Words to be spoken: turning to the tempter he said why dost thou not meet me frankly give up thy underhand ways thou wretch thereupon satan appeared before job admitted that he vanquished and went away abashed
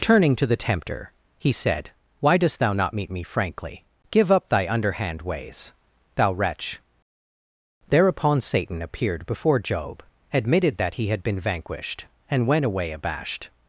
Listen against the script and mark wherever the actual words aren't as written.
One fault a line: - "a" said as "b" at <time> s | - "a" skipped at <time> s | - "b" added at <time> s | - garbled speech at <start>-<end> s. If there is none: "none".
- "had been" added at 11.1 s